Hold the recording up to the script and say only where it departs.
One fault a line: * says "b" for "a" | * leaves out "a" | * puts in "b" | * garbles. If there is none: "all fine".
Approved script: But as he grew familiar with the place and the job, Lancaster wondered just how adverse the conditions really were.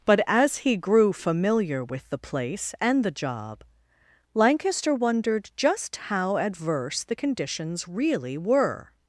all fine